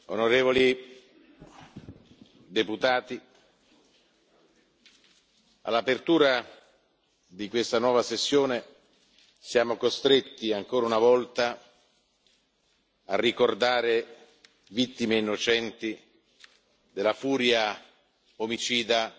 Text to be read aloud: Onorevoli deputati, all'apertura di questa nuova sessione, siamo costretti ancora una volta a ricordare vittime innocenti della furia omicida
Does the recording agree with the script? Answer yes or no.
yes